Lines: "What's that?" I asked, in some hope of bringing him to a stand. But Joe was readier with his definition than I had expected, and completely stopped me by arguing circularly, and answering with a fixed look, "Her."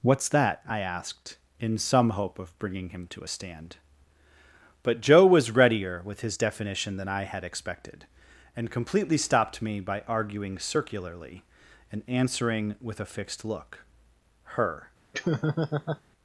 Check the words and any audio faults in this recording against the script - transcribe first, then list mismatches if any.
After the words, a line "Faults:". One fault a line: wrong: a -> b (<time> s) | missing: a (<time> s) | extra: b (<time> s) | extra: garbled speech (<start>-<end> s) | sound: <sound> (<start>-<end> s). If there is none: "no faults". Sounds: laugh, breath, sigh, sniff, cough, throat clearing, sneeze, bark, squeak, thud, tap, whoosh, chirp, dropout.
"What's that?" I asked, in some hope of bringing him to a stand. But Joe was readier with his definition than I had expected, and completely stopped me by arguing circularly, and answering with a fixed look, "Her."
Faults:
sound: laugh (15.1-16.0 s)